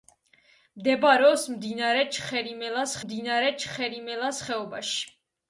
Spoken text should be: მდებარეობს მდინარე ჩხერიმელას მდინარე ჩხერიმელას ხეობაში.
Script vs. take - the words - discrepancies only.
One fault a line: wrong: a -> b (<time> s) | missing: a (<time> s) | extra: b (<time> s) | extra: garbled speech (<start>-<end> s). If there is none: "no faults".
no faults